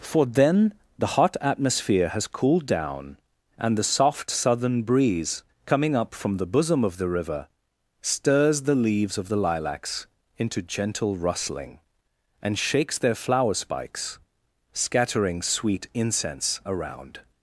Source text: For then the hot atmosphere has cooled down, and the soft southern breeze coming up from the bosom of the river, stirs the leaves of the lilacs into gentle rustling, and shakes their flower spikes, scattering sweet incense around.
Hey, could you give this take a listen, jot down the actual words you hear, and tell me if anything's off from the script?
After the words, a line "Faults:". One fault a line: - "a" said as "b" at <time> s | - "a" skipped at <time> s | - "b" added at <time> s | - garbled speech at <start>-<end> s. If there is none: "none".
For then the hot atmosphere has cooled down, and the soft southern breeze coming up from the bosom of the river, stirs the leaves of the lilacs into gentle rustling, and shakes their flower spikes, scattering sweet incense around.
Faults:
none